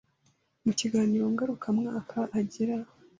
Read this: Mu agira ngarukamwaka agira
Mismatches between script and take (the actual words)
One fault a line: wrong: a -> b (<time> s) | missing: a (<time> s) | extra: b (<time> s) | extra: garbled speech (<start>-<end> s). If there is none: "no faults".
wrong: agira -> kiganiro (0.8 s)